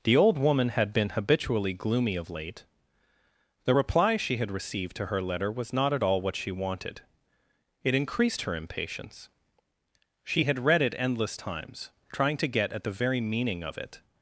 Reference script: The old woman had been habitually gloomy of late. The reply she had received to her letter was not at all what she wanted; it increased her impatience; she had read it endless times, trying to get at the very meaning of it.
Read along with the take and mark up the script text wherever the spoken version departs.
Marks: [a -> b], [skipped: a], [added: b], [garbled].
The old woman had been habitually gloomy of late. The reply she had received to her letter was not at all what she wanted; it increased her impatience; she had read it endless times, trying to get at the very meaning of it.